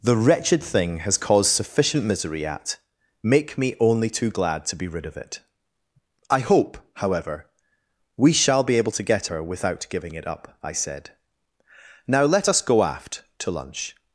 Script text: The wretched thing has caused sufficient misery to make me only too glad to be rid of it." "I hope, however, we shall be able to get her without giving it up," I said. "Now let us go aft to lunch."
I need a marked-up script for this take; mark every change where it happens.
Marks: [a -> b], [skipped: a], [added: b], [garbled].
The wretched thing has caused sufficient misery [to -> at] make me only too glad to be rid of it." "I hope, however, we shall be able to get her without giving it up," I said. "Now let us go aft to lunch."